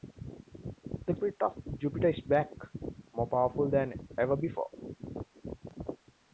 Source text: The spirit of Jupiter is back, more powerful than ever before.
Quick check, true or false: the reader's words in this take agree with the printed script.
true